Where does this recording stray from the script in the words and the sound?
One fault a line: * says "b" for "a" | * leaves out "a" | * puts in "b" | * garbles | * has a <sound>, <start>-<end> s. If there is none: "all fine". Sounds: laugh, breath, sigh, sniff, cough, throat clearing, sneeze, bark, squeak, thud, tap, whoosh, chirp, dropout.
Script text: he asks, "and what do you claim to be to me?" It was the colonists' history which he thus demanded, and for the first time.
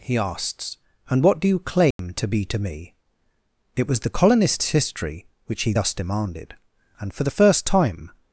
* has a dropout, 1.9-2.0 s